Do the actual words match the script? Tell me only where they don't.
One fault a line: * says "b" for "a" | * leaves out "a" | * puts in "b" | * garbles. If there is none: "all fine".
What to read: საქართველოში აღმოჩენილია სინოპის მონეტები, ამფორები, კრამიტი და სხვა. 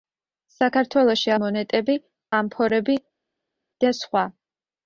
* leaves out "აღმოჩენილია სინოპის"
* leaves out "კრამიტი"